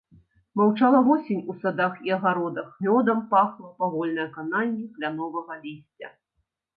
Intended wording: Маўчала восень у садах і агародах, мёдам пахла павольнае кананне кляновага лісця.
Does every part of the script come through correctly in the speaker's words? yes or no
yes